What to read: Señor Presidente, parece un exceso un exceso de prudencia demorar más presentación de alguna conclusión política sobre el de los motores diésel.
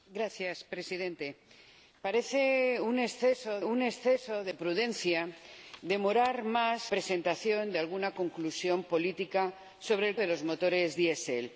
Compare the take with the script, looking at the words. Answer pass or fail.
pass